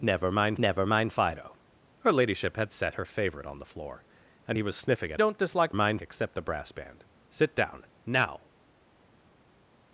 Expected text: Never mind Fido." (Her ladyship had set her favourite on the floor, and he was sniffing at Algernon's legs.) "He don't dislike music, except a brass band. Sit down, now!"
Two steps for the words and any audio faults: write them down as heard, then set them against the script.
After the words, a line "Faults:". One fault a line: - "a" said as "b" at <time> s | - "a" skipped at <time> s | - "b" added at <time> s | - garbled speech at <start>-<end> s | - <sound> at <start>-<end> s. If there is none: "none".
Never mind never mind Fido." (Her ladyship had set her favourite on the floor, and he was sniffing at Don't dislike mind, except a brass band. Sit down, now!"
Faults:
- "never mind" added at 0.6 s
- "Algernon's legs He" skipped at 5.2 s
- "music" said as "mind" at 5.7 s